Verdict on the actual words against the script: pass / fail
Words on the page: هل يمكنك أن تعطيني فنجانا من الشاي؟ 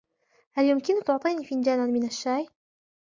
fail